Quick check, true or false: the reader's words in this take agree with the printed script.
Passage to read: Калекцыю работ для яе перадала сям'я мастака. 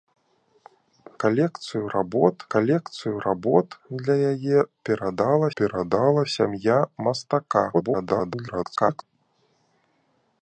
false